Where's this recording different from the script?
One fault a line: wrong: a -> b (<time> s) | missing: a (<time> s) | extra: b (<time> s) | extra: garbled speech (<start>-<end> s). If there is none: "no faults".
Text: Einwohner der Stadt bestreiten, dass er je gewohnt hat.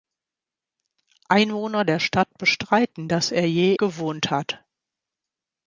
no faults